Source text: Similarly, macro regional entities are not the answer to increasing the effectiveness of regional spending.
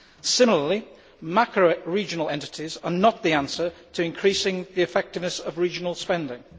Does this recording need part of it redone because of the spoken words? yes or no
no